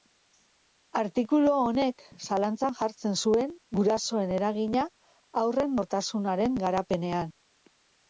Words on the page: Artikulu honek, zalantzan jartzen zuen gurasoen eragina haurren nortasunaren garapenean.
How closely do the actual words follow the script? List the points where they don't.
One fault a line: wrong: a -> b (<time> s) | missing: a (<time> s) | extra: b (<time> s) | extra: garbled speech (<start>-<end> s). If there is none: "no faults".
no faults